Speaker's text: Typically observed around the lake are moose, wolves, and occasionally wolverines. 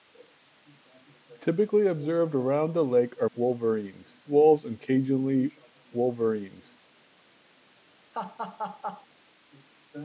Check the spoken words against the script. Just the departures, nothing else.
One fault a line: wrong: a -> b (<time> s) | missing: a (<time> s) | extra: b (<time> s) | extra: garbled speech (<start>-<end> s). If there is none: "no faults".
wrong: moose -> wolverines (3.3 s)